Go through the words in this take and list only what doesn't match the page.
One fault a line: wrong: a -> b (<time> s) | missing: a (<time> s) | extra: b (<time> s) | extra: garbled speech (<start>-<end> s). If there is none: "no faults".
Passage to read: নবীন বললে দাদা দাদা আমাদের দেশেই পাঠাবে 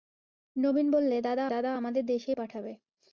no faults